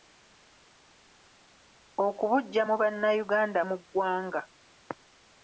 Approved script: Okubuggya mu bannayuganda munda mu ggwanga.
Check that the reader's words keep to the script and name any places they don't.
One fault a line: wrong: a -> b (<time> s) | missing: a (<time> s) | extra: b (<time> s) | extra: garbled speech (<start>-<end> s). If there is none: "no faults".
missing: munda (3.6 s)